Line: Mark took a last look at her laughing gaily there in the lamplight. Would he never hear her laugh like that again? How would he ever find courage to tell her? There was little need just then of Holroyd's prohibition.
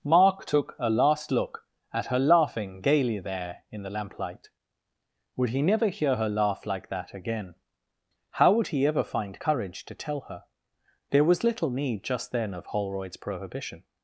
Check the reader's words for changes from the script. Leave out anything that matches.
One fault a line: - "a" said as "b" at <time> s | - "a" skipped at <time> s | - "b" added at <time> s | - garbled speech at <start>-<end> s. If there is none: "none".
none